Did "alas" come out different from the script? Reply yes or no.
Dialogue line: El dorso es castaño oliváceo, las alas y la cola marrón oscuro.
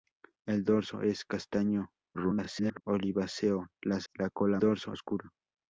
yes